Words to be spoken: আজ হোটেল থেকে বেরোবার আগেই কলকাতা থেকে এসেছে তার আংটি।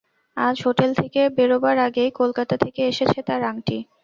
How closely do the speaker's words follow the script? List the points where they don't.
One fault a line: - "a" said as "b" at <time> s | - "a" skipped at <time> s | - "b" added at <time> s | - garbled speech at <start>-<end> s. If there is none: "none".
none